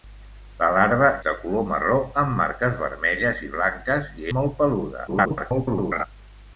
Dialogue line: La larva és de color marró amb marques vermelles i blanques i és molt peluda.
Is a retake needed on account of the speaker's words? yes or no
yes